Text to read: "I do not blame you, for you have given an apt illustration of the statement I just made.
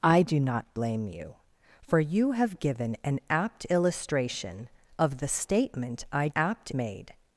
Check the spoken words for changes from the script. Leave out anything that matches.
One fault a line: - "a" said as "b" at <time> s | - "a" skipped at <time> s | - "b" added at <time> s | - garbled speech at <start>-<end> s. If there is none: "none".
- "just" said as "apt" at 6.3 s